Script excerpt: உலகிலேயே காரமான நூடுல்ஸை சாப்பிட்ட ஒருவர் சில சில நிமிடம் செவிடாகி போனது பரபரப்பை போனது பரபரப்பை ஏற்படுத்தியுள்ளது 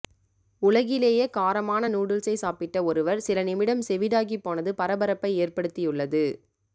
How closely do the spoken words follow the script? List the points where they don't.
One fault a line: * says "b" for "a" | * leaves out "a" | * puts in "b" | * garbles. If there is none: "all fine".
* leaves out "சில"
* leaves out "போனது பரபரப்பை"